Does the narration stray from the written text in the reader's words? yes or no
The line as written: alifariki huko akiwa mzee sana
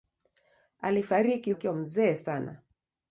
yes